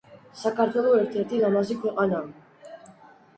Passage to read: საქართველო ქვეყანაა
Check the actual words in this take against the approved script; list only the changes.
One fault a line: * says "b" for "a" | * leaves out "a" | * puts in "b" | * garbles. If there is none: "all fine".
* puts in "ერთ ერთი ლამაზი"